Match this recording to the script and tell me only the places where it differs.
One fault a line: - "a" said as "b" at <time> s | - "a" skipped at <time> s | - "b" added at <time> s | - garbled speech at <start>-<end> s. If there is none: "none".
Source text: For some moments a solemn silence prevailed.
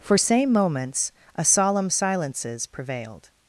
- "some" said as "same" at 0.2 s
- "silence" said as "silences" at 1.9 s